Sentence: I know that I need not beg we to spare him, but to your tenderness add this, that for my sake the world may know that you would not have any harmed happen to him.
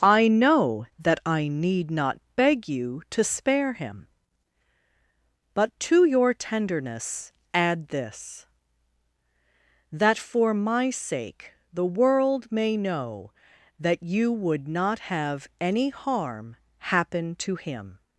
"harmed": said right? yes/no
no